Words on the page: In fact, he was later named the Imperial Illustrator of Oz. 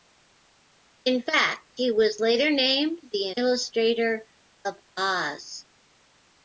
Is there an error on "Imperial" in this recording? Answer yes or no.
yes